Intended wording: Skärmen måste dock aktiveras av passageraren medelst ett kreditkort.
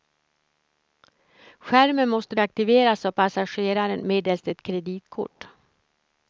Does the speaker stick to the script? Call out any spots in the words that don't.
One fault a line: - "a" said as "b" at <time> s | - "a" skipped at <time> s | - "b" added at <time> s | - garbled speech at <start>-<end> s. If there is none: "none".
- "dock" skipped at 2.4 s